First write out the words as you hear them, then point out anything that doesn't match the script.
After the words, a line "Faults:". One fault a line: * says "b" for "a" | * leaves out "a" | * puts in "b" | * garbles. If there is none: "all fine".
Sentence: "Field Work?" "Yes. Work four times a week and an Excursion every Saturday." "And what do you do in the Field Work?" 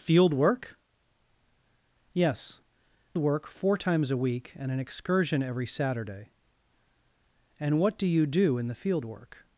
"Field Work?" "Yes. Work four times a week and an Excursion every Saturday." "And what do you do in the Field Work?"
Faults:
all fine